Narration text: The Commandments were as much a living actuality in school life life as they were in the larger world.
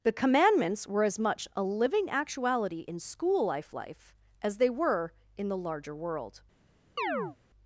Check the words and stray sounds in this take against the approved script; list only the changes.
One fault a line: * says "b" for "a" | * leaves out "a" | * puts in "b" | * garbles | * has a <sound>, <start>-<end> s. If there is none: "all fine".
* has a chirp, 7.0-7.4 s